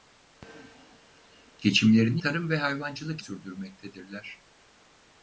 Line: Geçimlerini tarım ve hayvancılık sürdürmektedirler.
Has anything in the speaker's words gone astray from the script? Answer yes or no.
no